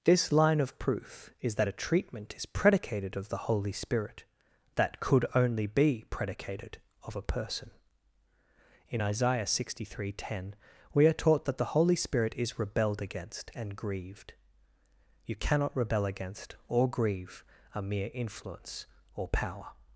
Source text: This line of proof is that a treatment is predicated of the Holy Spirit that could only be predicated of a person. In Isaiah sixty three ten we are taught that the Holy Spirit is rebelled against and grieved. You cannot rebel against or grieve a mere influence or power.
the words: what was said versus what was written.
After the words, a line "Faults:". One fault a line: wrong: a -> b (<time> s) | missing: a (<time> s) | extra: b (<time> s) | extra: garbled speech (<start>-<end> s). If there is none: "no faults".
This line of proof is that a treatment is predicated of the Holy Spirit that could only be predicated of a person. In Isaiah sixty three ten we are taught that the Holy Spirit is rebelled against and grieved. You cannot rebel against or grieve a mere influence or power.
Faults:
no faults